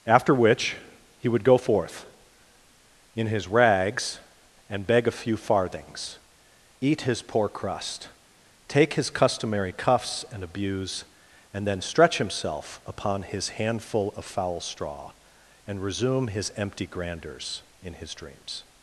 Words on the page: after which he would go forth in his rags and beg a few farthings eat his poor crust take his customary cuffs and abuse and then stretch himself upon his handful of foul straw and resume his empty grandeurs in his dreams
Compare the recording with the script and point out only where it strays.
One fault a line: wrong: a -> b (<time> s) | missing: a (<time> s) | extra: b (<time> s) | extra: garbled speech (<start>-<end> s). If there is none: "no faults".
no faults